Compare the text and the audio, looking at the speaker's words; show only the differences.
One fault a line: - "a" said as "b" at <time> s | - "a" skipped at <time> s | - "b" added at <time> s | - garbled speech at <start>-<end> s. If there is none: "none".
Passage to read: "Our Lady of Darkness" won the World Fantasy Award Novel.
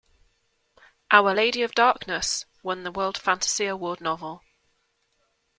none